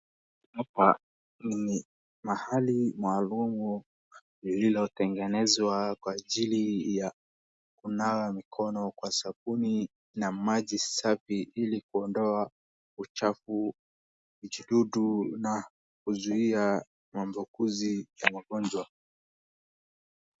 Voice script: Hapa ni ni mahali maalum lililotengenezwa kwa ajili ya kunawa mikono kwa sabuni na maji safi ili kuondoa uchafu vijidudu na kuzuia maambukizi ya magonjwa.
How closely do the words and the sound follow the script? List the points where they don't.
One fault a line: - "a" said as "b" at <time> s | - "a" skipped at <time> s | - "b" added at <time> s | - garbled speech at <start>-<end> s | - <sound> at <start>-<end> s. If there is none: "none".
- "ni" skipped at 1.9 s